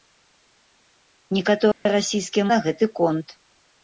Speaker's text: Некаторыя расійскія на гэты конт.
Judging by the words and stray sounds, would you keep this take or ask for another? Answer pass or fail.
fail